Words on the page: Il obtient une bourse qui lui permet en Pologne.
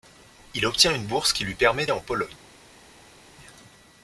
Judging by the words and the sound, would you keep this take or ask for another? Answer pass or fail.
pass